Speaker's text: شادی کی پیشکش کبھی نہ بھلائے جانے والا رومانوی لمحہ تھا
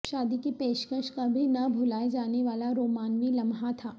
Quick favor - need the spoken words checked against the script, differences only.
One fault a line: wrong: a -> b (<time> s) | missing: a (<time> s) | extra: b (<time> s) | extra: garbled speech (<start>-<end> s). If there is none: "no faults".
no faults